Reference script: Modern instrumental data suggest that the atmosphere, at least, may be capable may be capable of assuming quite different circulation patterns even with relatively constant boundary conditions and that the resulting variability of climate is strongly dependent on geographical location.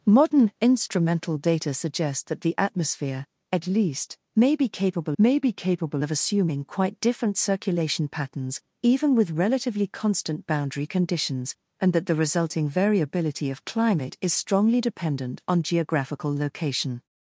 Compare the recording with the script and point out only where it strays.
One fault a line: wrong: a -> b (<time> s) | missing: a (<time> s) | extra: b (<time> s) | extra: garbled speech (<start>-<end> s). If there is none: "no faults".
no faults